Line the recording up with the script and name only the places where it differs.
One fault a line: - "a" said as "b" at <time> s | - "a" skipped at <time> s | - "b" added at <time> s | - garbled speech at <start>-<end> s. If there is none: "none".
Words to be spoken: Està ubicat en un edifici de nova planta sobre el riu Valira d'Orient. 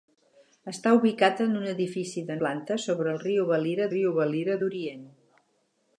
- "nova" skipped at 2.4 s
- "riu Valira" added at 3.9 s